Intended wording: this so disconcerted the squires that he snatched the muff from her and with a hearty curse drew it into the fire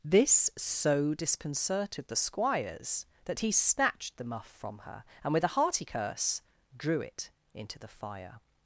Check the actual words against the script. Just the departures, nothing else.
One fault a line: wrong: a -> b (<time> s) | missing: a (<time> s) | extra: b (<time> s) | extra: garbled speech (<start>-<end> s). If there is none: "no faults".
no faults